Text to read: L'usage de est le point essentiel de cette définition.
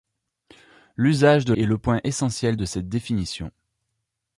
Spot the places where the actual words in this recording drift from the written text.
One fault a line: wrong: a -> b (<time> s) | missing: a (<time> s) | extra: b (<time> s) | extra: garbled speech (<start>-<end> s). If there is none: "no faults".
no faults